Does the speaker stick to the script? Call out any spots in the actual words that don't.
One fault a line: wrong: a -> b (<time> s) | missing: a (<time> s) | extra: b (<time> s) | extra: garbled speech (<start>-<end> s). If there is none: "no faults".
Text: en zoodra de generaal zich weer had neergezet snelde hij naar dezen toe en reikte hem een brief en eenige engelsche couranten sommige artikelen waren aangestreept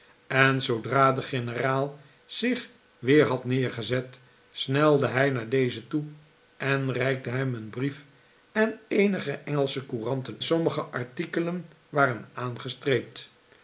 no faults